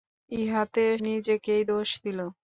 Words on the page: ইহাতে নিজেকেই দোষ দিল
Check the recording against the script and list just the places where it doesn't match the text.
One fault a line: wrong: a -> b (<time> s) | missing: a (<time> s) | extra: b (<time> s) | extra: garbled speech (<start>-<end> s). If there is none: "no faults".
no faults